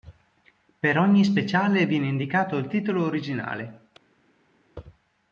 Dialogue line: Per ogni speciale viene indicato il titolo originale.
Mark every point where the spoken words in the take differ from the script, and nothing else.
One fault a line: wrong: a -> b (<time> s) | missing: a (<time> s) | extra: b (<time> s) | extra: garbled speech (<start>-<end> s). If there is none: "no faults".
no faults